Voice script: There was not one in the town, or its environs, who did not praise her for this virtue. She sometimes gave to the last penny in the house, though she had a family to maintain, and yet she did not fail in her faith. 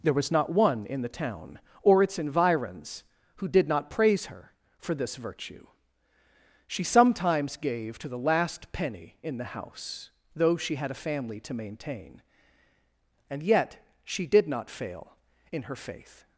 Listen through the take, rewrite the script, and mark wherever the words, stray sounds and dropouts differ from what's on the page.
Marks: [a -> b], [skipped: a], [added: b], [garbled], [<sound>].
There was not one in the town, or its environs, who did not praise her for this virtue. She sometimes gave to the last penny in the house, though she had a family to maintain, and yet she did not fail in her faith.